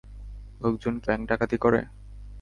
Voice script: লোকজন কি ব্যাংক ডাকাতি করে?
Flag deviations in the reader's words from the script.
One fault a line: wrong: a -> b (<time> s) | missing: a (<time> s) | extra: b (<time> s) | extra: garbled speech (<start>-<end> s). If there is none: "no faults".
no faults